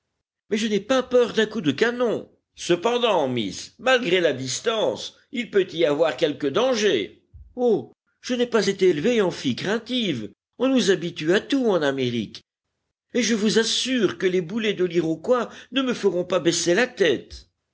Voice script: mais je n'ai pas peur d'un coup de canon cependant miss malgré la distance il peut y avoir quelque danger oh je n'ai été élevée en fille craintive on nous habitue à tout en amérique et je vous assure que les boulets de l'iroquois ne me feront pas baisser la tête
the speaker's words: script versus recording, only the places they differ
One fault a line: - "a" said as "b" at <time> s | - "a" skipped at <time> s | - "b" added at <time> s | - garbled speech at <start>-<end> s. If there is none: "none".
- "pas" added at 8.5 s